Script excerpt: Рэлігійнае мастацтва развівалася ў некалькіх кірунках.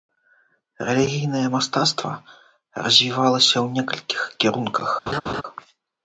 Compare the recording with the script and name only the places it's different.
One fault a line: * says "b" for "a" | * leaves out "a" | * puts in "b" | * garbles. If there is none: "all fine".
all fine